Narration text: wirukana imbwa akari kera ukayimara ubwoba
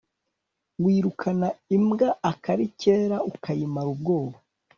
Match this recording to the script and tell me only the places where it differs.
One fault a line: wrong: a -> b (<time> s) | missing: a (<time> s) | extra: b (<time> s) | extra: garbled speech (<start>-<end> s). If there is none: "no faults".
no faults